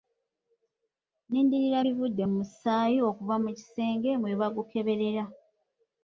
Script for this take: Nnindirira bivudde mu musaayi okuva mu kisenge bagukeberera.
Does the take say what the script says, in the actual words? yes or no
no